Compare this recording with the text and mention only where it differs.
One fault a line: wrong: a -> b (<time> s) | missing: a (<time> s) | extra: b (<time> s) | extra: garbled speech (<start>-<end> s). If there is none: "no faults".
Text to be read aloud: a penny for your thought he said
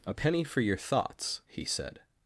wrong: thought -> thoughts (0.8 s)